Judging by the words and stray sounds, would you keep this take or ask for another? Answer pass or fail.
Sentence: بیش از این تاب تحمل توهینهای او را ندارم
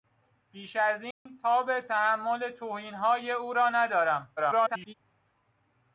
fail